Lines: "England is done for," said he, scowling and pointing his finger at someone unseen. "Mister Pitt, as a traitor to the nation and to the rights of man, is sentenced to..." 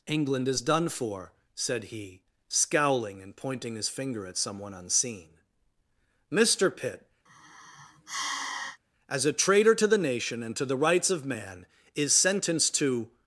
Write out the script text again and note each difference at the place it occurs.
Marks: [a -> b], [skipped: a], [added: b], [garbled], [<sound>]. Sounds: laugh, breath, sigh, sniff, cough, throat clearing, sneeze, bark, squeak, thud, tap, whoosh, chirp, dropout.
"England is done for," said he, scowling and pointing his finger at someone unseen. "Mister Pitt, [sigh] as a traitor to the nation and to the rights of man, is sentenced to..."